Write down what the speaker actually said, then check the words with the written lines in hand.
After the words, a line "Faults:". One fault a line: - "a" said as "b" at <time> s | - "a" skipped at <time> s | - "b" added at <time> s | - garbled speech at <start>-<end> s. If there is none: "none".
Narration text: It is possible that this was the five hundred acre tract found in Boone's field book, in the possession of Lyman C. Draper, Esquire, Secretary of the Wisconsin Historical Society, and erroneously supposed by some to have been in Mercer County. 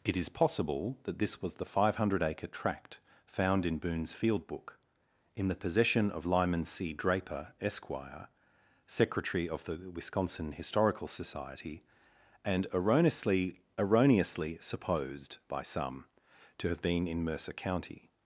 It is possible that this was the five hundred acre tract found in Boone's field book, in the possession of Lyman C. Draper, Esquire, Secretary of the Wisconsin Historical Society, and erroneously erroneously supposed by some to have been in Mercer County.
Faults:
- "erroneously" added at 13.8 s